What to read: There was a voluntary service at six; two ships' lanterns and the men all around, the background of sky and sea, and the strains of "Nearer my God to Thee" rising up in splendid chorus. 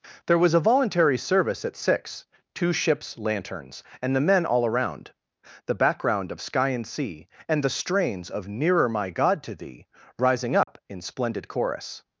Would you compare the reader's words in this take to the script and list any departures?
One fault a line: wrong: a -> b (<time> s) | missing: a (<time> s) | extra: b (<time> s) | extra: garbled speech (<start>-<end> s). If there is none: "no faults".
no faults